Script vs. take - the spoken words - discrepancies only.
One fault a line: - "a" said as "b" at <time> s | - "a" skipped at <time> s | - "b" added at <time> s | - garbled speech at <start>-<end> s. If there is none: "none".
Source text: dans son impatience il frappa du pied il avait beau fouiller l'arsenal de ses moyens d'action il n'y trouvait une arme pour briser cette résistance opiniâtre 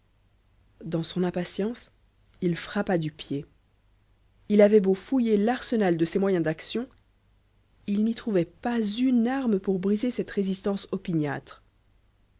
- "pas" added at 8.4 s